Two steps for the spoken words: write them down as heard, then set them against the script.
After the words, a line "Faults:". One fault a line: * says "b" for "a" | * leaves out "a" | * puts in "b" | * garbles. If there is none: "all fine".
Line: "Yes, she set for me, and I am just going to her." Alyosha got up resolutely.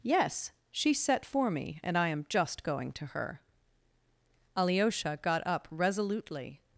"Yes, she set for me, and I am just going to her." Alyosha got up resolutely.
Faults:
all fine